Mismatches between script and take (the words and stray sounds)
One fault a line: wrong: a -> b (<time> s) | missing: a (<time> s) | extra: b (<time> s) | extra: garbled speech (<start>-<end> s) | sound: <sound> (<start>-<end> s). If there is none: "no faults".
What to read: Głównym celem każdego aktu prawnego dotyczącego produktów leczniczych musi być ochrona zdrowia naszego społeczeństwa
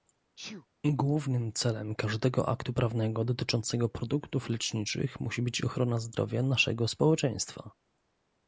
sound: sneeze (0.4-0.7 s)